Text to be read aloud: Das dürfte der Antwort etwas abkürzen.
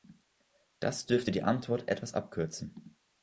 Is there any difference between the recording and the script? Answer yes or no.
yes